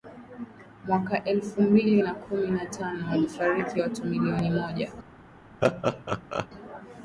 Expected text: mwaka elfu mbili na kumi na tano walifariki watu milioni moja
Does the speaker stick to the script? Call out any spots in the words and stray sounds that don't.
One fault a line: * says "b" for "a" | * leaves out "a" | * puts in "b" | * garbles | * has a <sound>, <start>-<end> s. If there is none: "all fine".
* has a laugh, 5.6-6.5 s